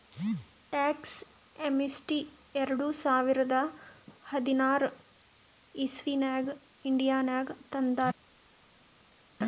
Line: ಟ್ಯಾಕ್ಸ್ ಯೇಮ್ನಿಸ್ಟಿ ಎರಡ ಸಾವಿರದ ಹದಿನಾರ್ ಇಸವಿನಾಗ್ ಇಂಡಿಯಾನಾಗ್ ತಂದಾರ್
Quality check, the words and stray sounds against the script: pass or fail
pass